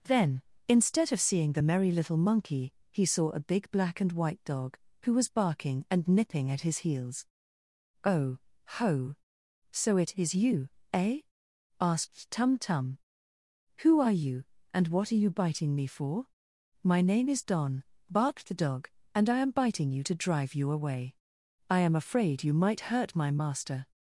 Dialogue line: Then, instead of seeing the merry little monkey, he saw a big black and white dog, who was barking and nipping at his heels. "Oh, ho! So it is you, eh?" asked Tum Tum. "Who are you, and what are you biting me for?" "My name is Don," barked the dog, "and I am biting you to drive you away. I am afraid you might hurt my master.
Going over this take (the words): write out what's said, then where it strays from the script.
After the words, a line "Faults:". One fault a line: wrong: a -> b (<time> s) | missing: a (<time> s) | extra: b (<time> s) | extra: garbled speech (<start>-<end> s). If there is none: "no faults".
Then, instead of seeing the merry little monkey, he saw a big black and white dog, who was barking and nipping at his heels. "Oh, ho! So it is you, eh?" asked Tum Tum. "Who are you, and what are you biting me for?" "My name is Don," barked the dog, "and I am biting you to drive you away. I am afraid you might hurt my master.
Faults:
no faults